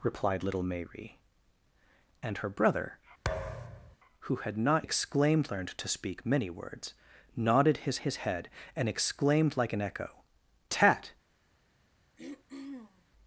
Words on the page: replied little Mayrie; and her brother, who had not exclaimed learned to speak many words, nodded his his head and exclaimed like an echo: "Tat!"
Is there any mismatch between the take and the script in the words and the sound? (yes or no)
yes